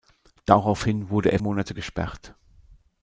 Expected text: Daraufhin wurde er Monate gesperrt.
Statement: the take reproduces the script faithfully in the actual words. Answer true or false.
true